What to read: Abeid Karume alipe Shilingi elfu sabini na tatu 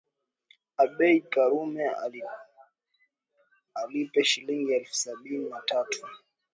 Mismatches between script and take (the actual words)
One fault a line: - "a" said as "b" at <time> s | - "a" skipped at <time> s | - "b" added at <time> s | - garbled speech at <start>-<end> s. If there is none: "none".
none